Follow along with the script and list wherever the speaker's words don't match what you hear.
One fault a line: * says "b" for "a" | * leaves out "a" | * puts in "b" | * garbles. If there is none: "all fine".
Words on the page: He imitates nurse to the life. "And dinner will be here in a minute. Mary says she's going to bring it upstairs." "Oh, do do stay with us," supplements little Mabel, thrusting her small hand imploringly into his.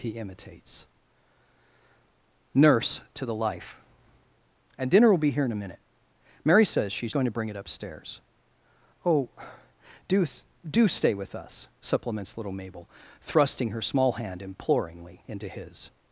all fine